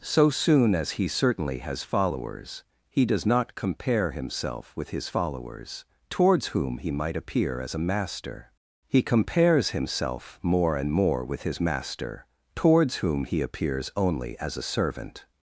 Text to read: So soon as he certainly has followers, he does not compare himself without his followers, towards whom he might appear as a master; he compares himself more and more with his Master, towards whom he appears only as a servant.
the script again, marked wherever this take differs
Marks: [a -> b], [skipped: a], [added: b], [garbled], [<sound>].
So soon as he certainly has followers, he does not compare himself [without -> with] his followers, towards whom he might appear as a master; he compares himself more and more with his Master, towards whom he appears only as a servant.